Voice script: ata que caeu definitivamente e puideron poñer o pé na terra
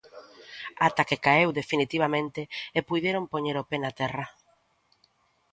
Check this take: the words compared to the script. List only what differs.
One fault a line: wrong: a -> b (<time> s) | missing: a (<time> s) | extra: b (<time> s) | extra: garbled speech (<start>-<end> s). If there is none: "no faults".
no faults